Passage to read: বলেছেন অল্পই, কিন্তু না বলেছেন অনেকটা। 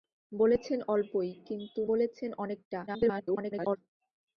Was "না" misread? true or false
true